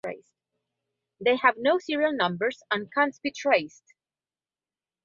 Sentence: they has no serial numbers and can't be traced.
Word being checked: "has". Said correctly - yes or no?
no